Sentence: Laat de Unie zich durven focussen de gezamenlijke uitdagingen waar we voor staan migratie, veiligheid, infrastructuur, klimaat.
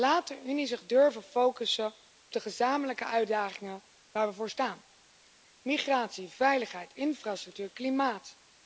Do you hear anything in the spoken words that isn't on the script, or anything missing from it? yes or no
no